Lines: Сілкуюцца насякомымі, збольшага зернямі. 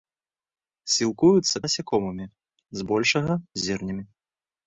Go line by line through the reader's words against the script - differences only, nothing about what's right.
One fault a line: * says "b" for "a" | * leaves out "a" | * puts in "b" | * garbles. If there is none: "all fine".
all fine